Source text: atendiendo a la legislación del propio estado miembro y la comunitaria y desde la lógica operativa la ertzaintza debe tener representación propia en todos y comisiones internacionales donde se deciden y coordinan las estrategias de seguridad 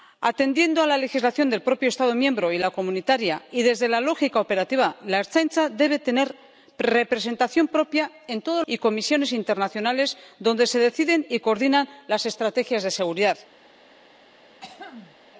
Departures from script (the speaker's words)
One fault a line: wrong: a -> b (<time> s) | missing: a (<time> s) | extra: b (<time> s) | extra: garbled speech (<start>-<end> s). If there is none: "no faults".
no faults